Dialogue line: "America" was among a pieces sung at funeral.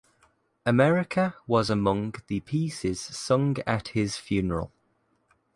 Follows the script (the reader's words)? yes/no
no